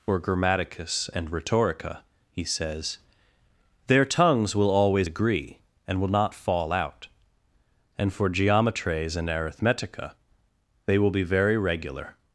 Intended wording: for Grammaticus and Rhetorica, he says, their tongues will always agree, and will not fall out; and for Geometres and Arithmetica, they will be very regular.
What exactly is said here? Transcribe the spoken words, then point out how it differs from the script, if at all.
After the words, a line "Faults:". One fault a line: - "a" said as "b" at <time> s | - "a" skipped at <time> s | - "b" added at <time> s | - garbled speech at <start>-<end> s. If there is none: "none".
for Grammaticus and Rhetorica, he says, their tongues will always agree, and will not fall out; and for Geometres and Arithmetica, they will be very regular.
Faults:
none